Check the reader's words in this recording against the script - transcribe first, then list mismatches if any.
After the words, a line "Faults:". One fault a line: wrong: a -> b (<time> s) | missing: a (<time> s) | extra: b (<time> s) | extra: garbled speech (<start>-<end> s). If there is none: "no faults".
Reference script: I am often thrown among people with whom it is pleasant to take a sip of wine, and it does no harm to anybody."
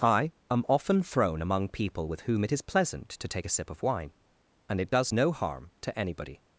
I am often thrown among people with whom it is pleasant to take a sip of wine, and it does no harm to anybody."
Faults:
no faults